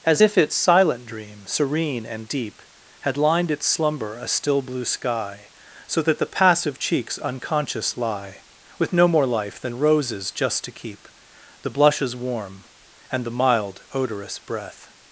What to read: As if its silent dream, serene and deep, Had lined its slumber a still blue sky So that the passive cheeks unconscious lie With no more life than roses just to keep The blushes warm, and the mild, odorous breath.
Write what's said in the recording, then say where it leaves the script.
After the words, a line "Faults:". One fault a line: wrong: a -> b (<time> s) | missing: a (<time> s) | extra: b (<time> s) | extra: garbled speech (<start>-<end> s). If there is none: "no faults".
As if its silent dream, serene and deep, Had lined its slumber a still blue sky So that the passive cheeks unconscious lie With no more life than roses just to keep The blushes warm, and the mild, odorous breath.
Faults:
no faults